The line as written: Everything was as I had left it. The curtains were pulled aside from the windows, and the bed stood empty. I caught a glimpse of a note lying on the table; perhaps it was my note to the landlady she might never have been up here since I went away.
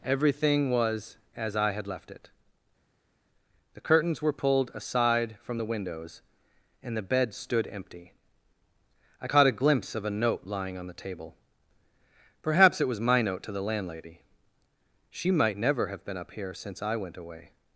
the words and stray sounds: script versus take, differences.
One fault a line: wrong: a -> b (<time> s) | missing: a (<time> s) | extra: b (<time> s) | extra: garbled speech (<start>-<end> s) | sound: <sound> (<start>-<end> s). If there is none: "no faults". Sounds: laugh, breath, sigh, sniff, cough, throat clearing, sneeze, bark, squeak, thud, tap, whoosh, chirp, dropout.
no faults